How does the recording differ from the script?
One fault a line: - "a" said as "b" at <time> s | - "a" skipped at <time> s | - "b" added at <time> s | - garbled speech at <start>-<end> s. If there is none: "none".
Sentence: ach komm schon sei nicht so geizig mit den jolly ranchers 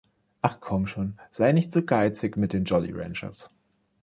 none